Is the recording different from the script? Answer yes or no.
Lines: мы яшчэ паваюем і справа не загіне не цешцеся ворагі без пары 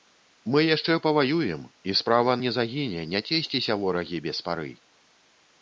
no